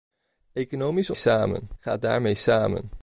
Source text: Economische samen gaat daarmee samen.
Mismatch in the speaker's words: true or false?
false